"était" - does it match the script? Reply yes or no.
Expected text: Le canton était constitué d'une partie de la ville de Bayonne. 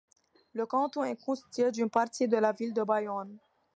no